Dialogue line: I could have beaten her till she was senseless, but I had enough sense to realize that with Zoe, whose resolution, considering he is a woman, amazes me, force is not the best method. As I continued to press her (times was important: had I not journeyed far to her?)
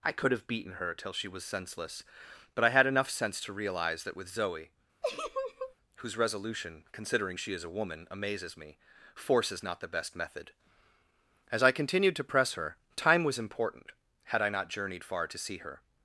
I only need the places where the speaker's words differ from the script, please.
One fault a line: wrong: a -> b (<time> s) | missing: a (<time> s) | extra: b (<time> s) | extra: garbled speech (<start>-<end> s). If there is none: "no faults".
wrong: he -> she (7.4 s)
wrong: times -> time (13.0 s)
extra: see (15.4 s)